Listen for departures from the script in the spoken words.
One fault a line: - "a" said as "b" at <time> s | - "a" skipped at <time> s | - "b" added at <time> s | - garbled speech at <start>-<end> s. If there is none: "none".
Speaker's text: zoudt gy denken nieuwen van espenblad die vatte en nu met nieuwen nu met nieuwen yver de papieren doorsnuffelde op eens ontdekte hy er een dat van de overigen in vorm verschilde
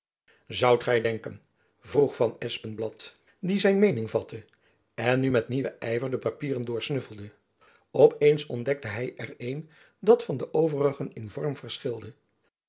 - "nieuwen" said as "vroeg" at 1.8 s
- "zijn meening" added at 3.6 s
- "nu met nieuwen" skipped at 5.7 s